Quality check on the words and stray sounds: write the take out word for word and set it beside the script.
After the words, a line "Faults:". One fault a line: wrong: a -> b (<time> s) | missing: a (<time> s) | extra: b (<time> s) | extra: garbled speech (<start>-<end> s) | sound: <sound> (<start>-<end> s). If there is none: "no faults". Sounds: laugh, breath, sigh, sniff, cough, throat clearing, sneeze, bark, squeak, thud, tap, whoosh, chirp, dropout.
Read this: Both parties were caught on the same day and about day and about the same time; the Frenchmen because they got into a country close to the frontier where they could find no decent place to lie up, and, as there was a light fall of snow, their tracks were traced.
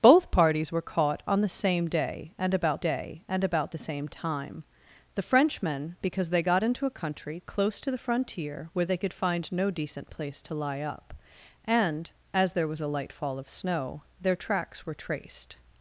Both parties were caught on the same day and about day and about the same time; the Frenchmen because they got into a country close to the frontier where they could find no decent place to lie up, and, as there was a light fall of snow, their tracks were traced.
Faults:
no faults